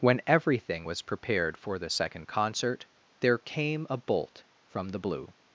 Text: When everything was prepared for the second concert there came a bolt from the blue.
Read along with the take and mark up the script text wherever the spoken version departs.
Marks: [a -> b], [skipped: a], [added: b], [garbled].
When everything was prepared for the second concert there came a bolt from the blue.